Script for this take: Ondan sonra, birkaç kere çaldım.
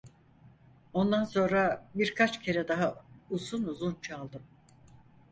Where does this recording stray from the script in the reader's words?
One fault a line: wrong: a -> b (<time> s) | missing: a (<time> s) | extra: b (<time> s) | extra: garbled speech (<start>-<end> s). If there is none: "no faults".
extra: daha uzun uzun (2.7 s)